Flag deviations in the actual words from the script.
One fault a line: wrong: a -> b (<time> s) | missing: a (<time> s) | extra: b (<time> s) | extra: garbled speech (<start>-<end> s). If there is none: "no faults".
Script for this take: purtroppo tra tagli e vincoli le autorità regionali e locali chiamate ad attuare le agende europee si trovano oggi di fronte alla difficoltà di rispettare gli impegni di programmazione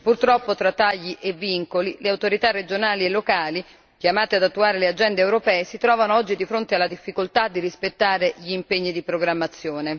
no faults